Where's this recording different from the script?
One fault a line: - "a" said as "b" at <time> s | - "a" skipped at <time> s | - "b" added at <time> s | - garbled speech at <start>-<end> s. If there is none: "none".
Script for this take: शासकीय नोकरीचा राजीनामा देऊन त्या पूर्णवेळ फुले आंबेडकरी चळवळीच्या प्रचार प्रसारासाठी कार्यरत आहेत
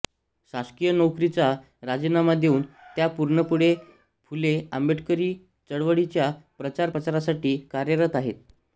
none